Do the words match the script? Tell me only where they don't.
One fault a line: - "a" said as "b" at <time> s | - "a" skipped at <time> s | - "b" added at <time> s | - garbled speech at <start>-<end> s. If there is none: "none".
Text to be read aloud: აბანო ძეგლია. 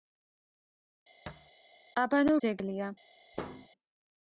none